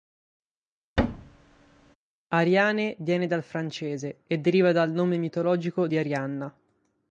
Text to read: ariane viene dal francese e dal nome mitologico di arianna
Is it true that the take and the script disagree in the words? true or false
true